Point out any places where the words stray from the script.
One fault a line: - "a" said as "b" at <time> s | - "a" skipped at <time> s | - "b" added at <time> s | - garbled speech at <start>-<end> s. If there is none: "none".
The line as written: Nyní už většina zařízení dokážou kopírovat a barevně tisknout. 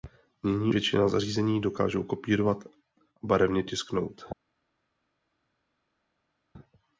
- "už" skipped at 0.7 s